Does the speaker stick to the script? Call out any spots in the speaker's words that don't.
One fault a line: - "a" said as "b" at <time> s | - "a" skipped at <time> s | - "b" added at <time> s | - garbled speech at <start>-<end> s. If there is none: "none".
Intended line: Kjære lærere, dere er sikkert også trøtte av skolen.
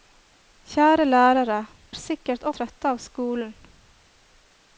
- "dere" skipped at 1.6 s
- "også" skipped at 2.5 s